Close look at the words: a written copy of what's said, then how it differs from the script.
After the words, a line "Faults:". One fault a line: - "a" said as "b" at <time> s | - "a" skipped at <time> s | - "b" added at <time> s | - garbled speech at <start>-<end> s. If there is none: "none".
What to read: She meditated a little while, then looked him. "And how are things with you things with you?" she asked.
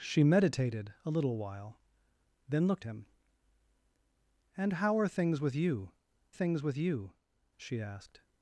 She meditated a little while, then looked him. "And how are things with you things with you?" she asked.
Faults:
none